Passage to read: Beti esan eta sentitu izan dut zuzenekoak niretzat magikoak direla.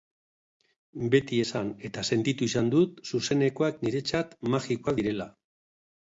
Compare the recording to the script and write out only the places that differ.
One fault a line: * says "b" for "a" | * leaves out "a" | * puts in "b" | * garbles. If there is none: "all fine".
all fine